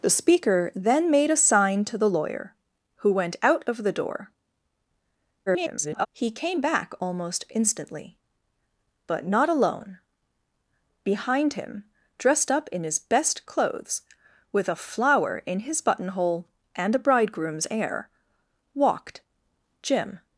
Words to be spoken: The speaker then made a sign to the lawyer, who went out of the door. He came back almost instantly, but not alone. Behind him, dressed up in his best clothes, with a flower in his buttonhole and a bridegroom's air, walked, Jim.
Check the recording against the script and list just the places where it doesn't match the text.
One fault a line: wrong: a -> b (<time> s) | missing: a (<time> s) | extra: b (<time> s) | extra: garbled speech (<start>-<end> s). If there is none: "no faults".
extra: garbled speech (5.5-6.1 s)